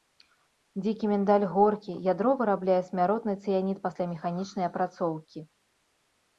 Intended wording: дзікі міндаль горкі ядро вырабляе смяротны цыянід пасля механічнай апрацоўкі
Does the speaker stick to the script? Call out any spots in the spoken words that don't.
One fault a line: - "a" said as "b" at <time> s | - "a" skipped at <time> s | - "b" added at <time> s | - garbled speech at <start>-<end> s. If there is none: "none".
none